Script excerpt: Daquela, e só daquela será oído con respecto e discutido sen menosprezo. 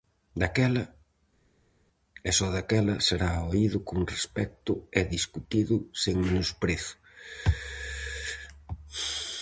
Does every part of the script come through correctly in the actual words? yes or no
yes